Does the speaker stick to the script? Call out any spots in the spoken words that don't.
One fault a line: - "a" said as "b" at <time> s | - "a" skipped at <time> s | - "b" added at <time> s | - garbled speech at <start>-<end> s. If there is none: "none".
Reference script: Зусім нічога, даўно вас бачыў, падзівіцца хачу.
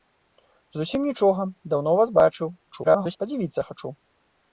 - garbled speech at 2.7-3.2 s